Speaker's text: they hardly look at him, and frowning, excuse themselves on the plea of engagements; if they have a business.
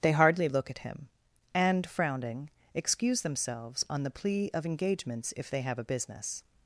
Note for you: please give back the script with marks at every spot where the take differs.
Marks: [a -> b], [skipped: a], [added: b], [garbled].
they hardly look at him, and frowning, excuse themselves on the plea of engagements; if they have a business.